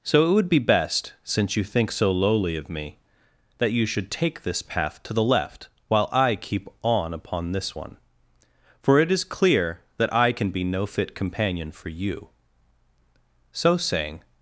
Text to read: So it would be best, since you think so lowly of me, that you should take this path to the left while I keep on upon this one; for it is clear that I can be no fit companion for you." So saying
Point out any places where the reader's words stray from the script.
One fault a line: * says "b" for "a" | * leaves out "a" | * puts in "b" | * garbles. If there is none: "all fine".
all fine